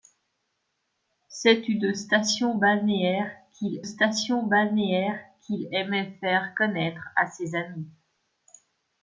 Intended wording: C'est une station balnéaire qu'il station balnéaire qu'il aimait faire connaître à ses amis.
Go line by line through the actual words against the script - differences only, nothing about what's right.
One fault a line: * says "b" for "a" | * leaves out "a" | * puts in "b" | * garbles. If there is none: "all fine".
all fine